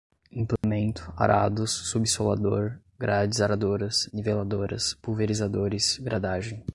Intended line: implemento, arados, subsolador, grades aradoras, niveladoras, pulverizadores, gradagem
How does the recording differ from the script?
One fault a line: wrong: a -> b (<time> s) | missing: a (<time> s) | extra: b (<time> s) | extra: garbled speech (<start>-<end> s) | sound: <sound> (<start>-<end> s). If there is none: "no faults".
sound: dropout (0.6-0.6 s)